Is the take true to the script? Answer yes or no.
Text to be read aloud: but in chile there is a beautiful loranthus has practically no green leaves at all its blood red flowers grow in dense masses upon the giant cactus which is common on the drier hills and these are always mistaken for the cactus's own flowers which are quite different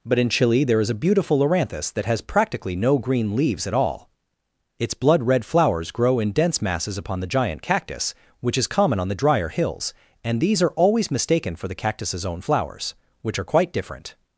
no